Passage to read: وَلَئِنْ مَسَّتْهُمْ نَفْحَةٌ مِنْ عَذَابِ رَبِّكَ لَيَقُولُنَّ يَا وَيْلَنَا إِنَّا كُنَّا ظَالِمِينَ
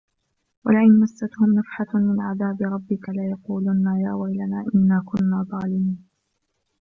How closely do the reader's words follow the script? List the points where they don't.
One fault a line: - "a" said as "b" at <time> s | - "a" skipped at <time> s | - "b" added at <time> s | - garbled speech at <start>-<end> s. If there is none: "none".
none